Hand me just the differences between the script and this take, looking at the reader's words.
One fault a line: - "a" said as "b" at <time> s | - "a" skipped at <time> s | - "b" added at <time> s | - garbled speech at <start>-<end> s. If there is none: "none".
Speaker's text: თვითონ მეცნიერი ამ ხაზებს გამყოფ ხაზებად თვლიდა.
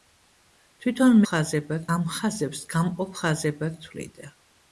- "მეცნიერი" said as "ხაზებად" at 1.3 s